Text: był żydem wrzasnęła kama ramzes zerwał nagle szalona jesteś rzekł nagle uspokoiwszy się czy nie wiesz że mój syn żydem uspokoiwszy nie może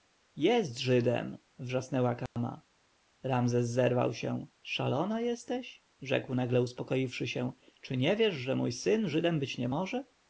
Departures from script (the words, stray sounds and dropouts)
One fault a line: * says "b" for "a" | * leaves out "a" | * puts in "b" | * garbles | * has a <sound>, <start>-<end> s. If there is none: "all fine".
* says "jest" for "był"
* has a dropout, 2.3-2.4 s
* says "się" for "nagle"
* says "być" for "uspokoiwszy"